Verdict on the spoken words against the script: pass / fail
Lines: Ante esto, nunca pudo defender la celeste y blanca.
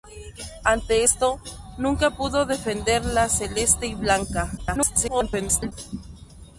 fail